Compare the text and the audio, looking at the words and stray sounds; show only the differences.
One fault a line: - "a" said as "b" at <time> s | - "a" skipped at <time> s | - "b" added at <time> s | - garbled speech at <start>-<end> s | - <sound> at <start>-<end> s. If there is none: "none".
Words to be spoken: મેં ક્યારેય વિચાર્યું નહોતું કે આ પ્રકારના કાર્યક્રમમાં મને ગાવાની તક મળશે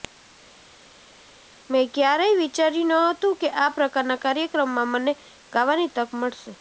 none